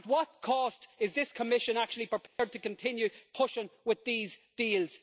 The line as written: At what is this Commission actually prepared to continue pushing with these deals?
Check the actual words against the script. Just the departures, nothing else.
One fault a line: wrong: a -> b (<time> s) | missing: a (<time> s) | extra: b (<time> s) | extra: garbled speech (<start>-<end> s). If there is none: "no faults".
extra: cost (0.4 s)